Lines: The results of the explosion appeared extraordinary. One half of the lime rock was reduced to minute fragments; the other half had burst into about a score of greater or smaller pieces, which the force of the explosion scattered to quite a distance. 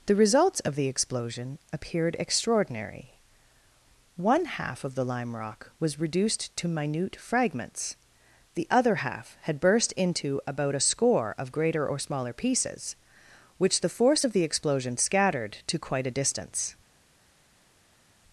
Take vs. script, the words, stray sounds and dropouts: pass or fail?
pass